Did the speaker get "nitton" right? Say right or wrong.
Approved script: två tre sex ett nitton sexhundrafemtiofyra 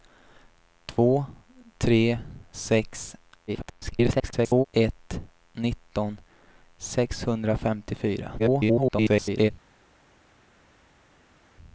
right